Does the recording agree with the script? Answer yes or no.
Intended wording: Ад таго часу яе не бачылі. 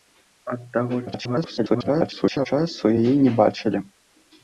no